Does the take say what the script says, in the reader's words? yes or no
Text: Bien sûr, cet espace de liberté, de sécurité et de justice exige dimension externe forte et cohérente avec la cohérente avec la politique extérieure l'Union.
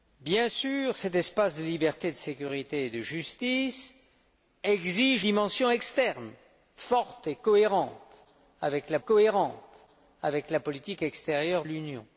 yes